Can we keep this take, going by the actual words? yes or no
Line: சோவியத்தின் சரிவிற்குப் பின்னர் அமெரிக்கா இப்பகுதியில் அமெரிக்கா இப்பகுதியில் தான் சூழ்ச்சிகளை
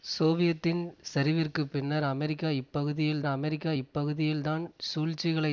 yes